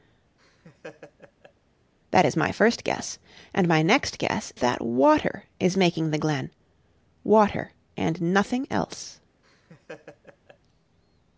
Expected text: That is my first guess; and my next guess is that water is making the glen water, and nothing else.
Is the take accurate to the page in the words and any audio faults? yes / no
no